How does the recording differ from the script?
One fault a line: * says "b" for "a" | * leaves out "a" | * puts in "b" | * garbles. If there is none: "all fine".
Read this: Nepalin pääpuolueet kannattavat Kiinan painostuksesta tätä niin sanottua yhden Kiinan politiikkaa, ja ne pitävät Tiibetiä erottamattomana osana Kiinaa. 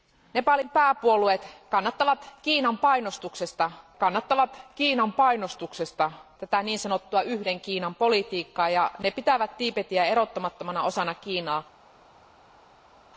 * puts in "kannattavat Kiinan painostuksesta"